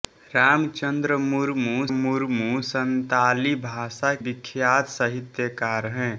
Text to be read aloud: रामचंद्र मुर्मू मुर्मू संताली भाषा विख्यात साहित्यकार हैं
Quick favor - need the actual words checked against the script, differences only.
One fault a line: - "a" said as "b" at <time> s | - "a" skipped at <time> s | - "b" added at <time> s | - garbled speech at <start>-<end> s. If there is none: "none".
none